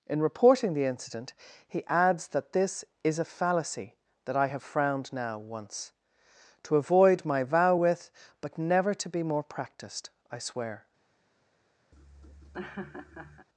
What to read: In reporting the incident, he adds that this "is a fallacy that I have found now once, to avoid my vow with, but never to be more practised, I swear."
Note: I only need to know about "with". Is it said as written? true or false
true